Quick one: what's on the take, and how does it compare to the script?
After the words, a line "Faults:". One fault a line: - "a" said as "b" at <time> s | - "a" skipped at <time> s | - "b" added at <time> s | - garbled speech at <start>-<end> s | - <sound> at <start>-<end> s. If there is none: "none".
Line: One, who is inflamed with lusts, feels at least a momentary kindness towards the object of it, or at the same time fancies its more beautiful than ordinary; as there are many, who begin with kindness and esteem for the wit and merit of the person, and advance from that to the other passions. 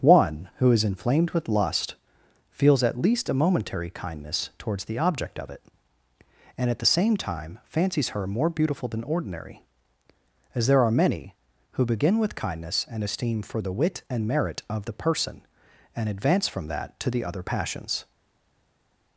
One, who is inflamed with lust, feels at least a momentary kindness towards the object of it, and at the same time fancies her more beautiful than ordinary; as there are many, who begin with kindness and esteem for the wit and merit of the person, and advance from that to the other passions.
Faults:
- "lusts" said as "lust" at 1.5 s
- "or" said as "and" at 6.6 s
- "its" said as "her" at 8.1 s